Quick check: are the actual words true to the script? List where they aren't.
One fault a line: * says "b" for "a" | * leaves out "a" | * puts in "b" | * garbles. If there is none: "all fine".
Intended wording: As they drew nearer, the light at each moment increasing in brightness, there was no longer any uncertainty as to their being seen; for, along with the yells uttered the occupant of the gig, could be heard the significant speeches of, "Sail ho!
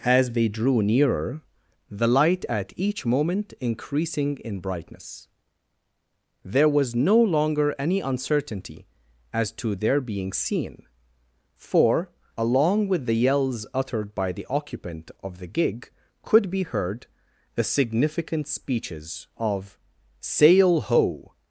* puts in "by"